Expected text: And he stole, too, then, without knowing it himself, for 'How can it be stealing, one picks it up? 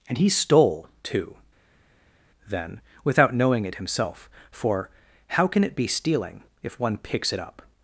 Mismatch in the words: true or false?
true